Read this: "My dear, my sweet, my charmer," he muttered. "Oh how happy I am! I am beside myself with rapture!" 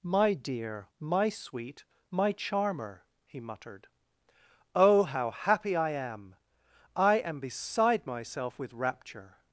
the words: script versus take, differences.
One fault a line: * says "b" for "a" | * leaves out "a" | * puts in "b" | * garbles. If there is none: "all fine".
all fine